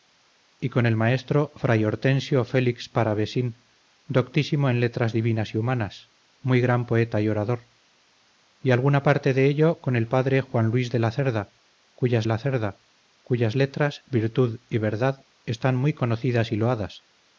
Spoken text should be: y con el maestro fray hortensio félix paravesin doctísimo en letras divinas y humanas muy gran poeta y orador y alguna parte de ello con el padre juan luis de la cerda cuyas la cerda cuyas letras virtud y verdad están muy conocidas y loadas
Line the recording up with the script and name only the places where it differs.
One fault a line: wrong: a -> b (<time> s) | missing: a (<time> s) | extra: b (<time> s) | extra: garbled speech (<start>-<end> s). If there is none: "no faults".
no faults